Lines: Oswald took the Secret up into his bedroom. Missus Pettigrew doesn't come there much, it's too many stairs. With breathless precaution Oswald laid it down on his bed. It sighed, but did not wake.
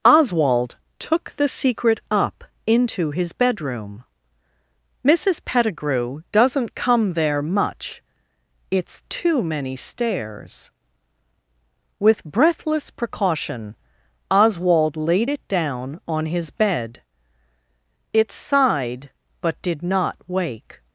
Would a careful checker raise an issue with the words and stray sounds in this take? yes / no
no